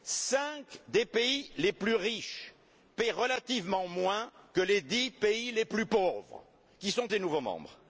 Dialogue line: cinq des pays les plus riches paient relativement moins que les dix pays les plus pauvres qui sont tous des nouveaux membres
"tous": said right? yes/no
no